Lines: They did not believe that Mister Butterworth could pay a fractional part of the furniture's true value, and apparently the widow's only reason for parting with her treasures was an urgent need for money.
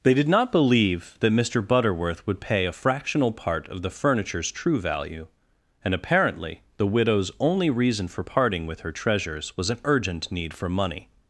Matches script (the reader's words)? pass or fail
fail